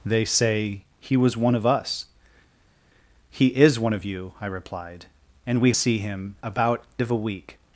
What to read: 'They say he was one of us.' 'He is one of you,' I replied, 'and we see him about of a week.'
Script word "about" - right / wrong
right